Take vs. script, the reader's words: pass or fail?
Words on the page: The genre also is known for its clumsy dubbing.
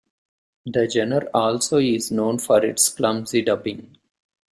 pass